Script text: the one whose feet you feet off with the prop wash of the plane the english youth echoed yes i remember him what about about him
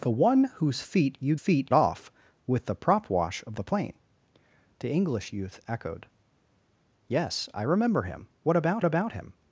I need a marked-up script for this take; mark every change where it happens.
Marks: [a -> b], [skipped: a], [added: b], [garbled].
the one whose feet you feet off with the prop wash of the plane the english youth echoed yes i remember him what about about him